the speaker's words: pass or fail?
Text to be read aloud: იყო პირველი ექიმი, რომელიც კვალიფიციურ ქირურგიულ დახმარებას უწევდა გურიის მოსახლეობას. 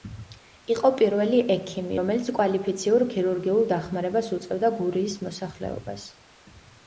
pass